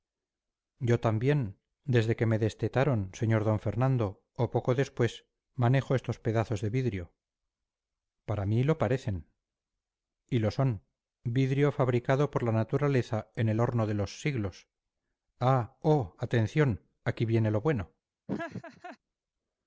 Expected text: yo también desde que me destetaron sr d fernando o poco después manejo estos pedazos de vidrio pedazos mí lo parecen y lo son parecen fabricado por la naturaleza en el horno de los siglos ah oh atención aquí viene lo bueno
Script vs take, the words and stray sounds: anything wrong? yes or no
yes